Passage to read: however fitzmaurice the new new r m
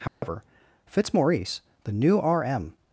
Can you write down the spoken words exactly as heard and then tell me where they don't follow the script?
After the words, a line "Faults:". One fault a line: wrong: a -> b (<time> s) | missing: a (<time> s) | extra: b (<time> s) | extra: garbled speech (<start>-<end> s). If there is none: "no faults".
however fitzmaurice the new r m
Faults:
missing: new (2.2 s)